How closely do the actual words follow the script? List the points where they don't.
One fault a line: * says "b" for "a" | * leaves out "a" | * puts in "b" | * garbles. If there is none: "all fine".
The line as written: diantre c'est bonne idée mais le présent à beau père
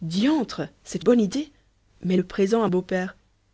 all fine